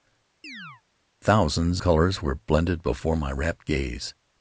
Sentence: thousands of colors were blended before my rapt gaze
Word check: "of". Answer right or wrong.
wrong